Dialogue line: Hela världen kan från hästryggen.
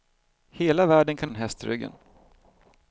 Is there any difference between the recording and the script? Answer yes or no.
no